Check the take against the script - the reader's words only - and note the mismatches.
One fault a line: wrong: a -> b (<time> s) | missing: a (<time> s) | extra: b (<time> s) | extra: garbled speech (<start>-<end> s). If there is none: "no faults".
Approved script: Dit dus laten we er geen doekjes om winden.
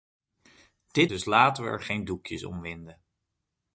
no faults